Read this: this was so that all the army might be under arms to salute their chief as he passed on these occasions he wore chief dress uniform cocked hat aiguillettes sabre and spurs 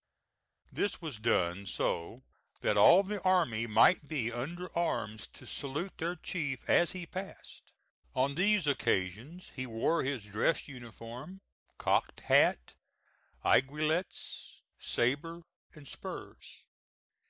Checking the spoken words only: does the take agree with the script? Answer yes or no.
no